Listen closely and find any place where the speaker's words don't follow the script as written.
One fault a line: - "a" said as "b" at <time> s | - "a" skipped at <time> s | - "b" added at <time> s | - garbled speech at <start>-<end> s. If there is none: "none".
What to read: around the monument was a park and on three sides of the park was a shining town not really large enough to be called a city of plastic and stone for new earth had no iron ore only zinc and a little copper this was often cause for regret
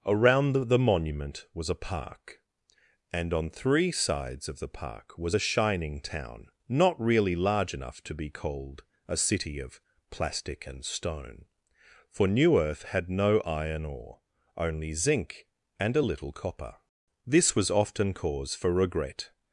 - "the" added at 0.7 s